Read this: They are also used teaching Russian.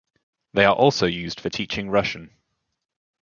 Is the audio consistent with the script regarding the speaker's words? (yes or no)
no